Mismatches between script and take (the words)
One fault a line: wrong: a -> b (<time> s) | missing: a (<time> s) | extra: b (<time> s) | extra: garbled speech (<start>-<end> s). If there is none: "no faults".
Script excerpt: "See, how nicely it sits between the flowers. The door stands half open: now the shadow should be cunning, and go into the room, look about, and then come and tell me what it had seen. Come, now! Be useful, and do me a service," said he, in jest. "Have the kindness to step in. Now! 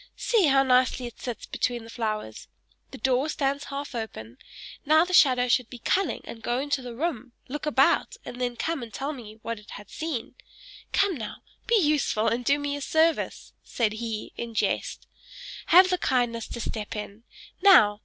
no faults